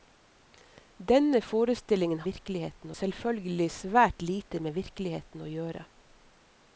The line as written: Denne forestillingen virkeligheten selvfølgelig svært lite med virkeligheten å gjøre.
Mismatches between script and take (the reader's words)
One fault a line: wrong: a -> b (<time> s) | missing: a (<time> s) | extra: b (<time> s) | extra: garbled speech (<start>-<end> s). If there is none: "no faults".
no faults